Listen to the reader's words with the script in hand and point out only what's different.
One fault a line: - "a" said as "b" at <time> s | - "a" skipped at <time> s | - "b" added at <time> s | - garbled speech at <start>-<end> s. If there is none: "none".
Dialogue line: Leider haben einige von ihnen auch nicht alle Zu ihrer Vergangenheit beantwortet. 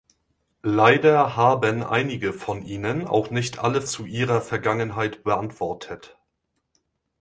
none